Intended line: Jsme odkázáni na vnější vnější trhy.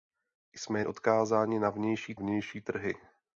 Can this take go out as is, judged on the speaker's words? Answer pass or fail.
pass